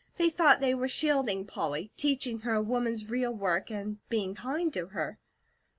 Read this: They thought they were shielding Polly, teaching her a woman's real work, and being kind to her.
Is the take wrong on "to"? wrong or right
right